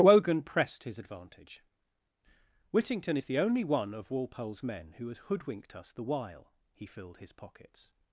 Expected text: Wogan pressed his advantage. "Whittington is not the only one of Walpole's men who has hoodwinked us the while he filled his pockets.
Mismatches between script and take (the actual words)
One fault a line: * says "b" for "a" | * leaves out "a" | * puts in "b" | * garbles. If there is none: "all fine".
* leaves out "not"